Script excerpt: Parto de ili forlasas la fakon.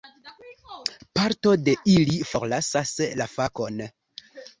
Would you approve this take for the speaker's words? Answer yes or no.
yes